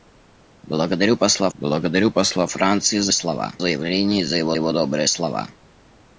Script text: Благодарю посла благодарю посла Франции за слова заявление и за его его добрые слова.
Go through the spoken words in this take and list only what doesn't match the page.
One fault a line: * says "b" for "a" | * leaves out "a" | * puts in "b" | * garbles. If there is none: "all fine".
all fine